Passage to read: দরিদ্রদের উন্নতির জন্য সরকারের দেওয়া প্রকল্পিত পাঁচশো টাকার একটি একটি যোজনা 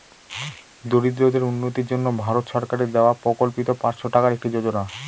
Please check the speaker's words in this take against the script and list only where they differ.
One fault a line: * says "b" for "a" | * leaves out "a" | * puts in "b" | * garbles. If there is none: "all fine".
* puts in "ভারত"
* leaves out "একটি"